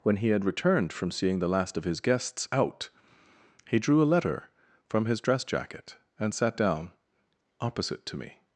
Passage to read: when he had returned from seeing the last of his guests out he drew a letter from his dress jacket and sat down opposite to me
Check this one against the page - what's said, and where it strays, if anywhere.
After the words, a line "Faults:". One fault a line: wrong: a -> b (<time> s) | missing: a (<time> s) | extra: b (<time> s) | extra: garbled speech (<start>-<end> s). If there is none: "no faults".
when he had returned from seeing the last of his guests out he drew a letter from his dress jacket and sat down opposite to me
Faults:
no faults